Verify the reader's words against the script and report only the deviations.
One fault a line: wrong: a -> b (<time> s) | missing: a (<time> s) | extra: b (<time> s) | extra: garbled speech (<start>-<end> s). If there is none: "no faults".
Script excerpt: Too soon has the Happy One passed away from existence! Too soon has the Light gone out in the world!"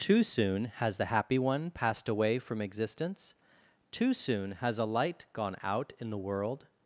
wrong: the -> a (4.8 s)